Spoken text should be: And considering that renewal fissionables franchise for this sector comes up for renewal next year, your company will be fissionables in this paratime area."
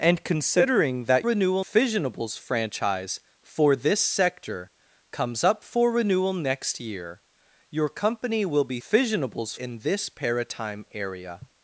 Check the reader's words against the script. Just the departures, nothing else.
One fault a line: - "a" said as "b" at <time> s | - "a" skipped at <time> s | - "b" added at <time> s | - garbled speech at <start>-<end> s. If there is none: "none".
none